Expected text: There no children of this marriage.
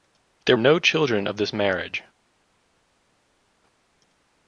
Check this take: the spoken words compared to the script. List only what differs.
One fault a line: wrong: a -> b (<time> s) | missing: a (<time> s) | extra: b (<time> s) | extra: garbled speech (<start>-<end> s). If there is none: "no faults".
no faults